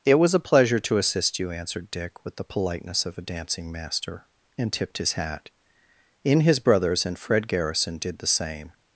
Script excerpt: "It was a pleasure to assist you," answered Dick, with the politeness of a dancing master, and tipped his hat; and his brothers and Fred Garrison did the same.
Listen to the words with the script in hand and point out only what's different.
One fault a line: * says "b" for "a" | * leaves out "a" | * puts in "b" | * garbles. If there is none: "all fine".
* says "in" for "and"